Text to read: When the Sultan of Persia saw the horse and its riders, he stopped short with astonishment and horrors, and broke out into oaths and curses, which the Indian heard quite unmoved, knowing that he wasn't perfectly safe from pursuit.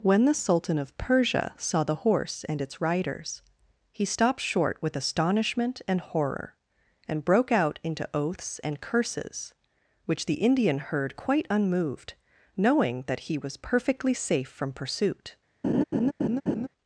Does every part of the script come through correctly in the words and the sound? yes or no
no